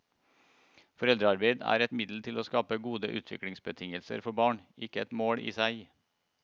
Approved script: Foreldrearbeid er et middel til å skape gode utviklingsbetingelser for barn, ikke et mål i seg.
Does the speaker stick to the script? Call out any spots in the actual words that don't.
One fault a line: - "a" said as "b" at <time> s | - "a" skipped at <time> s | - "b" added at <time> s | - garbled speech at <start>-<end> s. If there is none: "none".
none